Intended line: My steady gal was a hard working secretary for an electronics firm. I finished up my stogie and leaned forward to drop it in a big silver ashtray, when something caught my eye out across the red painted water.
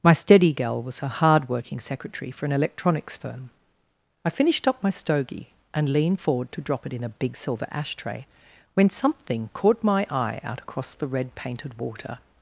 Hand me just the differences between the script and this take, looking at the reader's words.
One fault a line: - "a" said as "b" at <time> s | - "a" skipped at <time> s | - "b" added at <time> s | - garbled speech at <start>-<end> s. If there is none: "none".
none